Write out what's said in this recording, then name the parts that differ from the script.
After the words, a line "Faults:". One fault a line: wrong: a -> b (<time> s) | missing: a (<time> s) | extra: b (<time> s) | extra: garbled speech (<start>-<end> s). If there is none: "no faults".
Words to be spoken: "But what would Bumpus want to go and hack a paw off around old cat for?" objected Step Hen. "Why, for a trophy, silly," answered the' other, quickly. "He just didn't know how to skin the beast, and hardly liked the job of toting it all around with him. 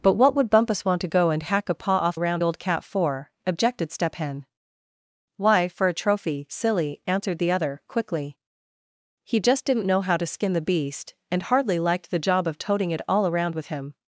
"But what would Bumpus want to go and hack a paw off around old cat for?" objected Step Hen. "Why, for a trophy, silly," answered the' other, quickly. "He just didn't know how to skin the beast, and hardly liked the job of toting it all around with him.
Faults:
no faults